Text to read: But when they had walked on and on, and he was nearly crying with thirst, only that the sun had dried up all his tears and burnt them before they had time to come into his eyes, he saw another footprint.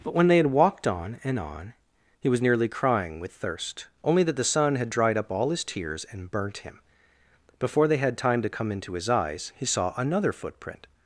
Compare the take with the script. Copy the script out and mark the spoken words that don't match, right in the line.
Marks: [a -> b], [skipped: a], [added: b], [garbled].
But when they had walked on and on, [skipped: and] he was nearly crying with thirst, only that the sun had dried up all his tears and burnt [them -> him] before they had time to come into his eyes, he saw another footprint.